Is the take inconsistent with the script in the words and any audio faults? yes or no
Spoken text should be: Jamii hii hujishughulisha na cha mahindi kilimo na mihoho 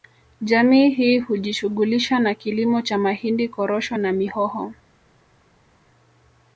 yes